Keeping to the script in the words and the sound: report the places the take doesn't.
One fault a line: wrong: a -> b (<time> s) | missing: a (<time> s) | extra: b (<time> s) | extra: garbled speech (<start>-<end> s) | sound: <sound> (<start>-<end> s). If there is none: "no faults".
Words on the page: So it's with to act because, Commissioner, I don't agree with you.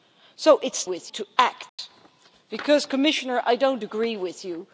sound: dropout (1.7-1.8 s)